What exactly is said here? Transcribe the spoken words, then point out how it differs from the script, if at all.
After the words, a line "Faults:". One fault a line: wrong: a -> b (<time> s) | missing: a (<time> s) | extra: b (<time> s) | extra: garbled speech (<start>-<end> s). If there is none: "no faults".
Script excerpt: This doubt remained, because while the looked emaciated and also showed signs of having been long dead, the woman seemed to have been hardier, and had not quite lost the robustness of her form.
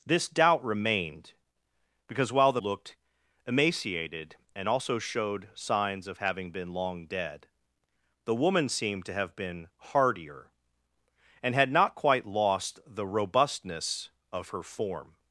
This doubt remained, because while the looked emaciated and also showed signs of having been long dead, the woman seemed to have been hardier, and had not quite lost the robustness of her form.
Faults:
no faults